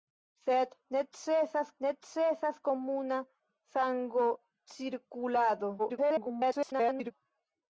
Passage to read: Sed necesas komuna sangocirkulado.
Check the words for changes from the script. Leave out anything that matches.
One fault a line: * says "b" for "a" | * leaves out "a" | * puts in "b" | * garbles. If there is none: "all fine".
* puts in "necesas"
* garbles